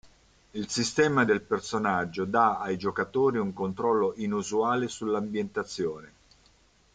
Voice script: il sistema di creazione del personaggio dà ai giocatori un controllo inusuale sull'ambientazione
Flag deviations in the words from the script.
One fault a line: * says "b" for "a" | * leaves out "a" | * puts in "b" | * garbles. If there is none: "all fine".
* leaves out "di creazione"